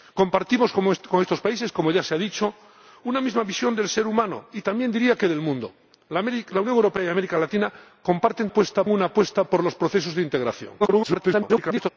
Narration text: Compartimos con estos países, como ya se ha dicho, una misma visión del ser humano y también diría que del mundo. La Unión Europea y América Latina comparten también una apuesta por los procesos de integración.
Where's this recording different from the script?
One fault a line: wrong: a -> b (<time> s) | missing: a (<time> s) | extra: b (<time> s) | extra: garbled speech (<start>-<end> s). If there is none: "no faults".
wrong: también -> apuesta (8.5 s)
extra: garbled speech (10.8-11.9 s)